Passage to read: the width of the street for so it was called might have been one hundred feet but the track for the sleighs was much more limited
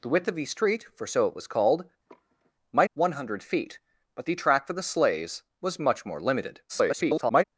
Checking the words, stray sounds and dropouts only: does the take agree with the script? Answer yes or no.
no